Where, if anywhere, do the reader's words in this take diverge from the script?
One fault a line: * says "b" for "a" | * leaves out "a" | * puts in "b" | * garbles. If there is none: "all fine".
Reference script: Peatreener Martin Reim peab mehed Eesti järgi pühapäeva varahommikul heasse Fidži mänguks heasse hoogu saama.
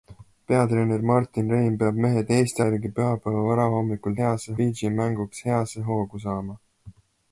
all fine